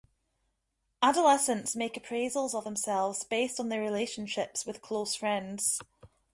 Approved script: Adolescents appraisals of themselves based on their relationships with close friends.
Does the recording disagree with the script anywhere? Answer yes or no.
yes